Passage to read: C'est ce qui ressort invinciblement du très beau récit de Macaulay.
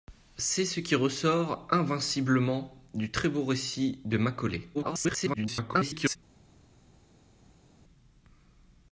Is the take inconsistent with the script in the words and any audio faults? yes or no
yes